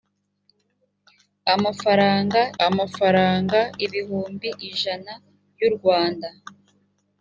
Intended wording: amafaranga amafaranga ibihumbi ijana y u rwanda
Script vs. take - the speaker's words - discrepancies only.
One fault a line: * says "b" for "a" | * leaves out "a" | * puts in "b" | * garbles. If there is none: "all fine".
all fine